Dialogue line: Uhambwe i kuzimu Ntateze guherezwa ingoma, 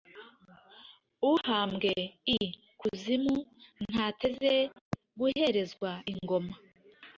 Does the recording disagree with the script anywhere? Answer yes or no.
no